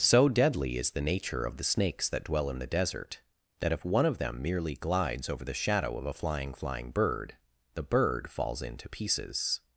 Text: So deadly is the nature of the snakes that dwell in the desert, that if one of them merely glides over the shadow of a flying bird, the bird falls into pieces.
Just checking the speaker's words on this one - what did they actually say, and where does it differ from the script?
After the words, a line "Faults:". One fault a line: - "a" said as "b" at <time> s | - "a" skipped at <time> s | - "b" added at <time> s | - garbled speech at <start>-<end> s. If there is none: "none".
So deadly is the nature of the snakes that dwell in the desert, that if one of them merely glides over the shadow of a flying flying bird, the bird falls into pieces.
Faults:
- "flying" added at 6.5 s